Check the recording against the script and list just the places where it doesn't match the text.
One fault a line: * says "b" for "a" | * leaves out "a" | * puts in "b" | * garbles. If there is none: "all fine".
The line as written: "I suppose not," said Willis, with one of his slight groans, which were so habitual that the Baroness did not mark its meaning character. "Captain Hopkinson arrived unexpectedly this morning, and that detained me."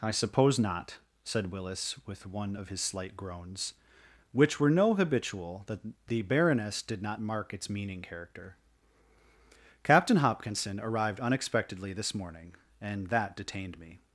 * says "no" for "so"